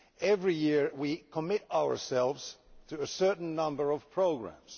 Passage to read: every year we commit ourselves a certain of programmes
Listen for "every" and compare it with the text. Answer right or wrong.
right